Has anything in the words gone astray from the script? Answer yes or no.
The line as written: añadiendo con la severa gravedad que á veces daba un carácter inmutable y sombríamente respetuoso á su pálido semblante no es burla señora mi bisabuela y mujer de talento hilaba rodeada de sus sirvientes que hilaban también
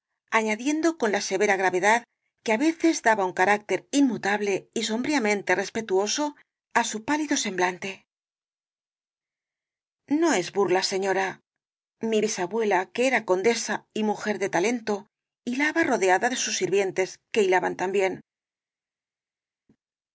yes